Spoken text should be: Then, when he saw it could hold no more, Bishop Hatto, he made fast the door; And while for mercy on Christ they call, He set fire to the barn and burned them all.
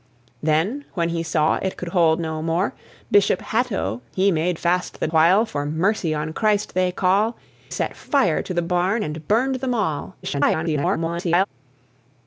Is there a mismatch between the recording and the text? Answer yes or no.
yes